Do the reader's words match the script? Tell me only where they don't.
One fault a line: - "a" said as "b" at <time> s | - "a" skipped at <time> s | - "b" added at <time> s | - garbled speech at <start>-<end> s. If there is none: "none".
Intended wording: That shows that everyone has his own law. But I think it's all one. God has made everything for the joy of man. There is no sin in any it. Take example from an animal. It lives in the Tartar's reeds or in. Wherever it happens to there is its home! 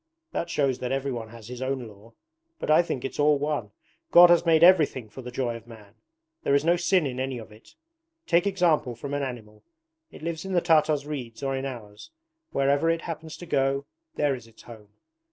- "of" added at 7.4 s
- "ours" added at 11.6 s
- "go" added at 13.4 s